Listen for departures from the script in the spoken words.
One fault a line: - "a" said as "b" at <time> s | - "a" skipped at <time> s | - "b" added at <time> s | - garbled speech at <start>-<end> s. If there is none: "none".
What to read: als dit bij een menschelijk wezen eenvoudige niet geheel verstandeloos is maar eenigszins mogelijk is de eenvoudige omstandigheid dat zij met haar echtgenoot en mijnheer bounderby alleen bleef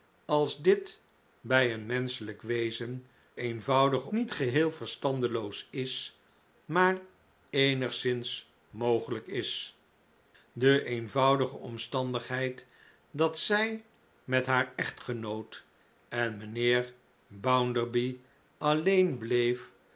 none